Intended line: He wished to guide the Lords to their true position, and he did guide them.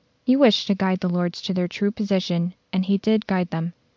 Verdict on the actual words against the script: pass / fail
pass